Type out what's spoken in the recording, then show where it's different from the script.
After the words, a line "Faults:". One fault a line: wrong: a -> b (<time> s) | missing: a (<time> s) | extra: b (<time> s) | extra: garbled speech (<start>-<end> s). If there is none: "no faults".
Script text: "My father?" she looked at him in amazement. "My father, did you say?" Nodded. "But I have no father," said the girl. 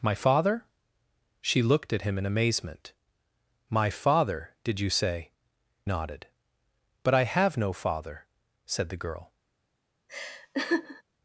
"My father?" she looked at him in amazement. "My father, did you say?" Nodded. "But I have no father," said the girl.
Faults:
no faults